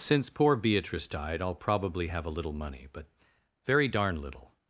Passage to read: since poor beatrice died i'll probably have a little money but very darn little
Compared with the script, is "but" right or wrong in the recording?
right